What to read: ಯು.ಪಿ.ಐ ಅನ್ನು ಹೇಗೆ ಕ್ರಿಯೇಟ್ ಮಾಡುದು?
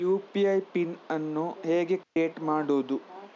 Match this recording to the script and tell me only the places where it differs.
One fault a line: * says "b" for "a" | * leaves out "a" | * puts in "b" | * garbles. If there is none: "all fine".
* puts in "ಪಿನ್"